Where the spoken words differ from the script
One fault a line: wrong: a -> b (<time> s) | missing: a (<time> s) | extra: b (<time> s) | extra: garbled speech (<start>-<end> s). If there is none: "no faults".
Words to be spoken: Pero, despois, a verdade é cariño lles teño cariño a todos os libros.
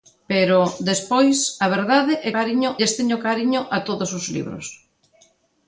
no faults